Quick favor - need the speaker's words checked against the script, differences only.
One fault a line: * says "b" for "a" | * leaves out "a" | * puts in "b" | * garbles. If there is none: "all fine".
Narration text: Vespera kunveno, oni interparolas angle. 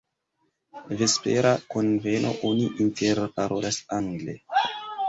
all fine